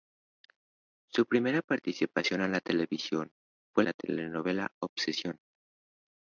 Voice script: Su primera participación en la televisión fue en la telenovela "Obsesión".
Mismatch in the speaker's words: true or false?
true